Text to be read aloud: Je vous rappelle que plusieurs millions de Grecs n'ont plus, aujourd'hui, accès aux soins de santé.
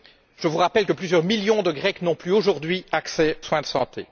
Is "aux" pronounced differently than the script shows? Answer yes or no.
yes